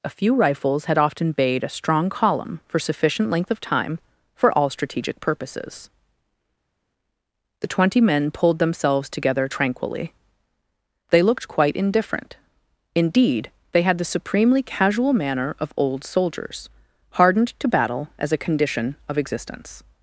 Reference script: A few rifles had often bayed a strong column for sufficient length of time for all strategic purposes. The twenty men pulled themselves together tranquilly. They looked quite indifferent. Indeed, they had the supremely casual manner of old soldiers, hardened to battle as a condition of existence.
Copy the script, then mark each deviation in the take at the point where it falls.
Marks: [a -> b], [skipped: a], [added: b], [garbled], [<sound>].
A few rifles had often bayed a strong column for sufficient length of time for all strategic purposes. The twenty men pulled themselves together tranquilly. They looked quite indifferent. Indeed, they had the supremely casual manner of old soldiers, hardened to battle as a condition of existence.